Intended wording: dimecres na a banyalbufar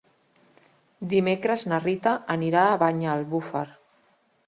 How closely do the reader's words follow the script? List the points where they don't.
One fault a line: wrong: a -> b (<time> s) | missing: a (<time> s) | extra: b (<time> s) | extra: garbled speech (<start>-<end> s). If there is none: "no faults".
extra: rita anirà (1.9 s)